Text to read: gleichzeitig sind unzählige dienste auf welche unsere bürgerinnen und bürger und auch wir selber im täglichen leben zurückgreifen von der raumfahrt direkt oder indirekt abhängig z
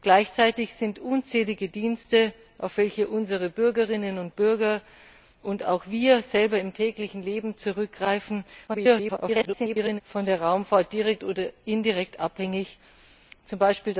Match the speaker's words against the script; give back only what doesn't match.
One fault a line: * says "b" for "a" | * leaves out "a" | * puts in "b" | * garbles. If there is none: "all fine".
* garbles